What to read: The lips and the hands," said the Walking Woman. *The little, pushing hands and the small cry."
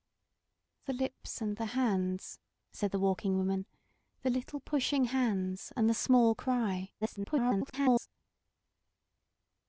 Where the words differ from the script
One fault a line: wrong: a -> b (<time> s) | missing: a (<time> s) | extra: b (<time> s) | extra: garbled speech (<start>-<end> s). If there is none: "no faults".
extra: garbled speech (7.0-8.1 s)